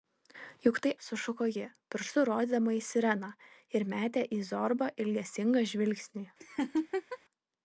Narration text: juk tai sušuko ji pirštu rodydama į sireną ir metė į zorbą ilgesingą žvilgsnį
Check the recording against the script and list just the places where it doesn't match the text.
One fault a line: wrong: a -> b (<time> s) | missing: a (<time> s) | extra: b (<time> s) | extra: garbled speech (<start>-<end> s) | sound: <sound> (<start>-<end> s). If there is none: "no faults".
sound: laugh (6.4-7.2 s)